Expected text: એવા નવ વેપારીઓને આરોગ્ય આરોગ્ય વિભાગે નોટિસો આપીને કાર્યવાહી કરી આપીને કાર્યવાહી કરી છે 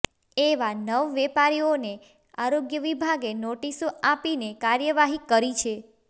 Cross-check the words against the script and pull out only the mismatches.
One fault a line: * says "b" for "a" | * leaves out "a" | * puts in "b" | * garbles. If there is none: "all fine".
* leaves out "આરોગ્ય"
* leaves out "આપીને કાર્યવાહી કરી"